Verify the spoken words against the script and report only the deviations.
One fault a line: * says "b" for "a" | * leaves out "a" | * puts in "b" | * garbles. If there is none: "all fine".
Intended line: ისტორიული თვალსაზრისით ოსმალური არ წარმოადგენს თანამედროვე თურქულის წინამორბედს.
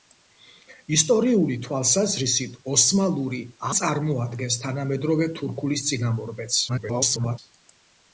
* leaves out "არ"
* garbles